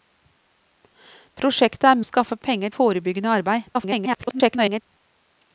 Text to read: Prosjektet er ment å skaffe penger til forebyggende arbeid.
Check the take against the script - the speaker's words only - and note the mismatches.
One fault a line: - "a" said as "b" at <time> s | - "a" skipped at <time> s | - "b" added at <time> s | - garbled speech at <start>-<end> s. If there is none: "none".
- "ment" skipped at 2.0 s
- "til" skipped at 2.8 s
- garbled speech at 3.7-4.8 s